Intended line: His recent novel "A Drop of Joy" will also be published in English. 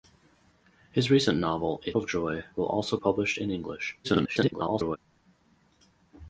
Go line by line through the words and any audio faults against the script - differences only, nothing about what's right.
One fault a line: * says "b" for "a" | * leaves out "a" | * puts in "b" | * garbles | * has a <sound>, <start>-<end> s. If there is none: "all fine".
* leaves out "Drop"
* leaves out "be"
* garbles